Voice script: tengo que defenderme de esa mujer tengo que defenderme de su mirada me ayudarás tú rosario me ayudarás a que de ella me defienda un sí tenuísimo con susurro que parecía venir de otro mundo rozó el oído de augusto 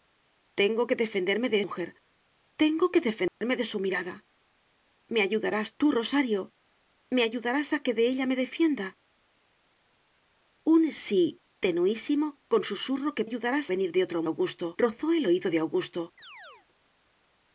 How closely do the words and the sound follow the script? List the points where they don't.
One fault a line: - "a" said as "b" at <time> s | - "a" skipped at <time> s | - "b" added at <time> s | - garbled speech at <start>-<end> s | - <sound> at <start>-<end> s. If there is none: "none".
- "esa" skipped at 1.6 s
- dropout at 3.3-3.4 s
- "parecía" said as "ayudarás" at 13.3 s
- "mundo" said as "augusto" at 14.3 s
- chirp at 16.2-16.7 s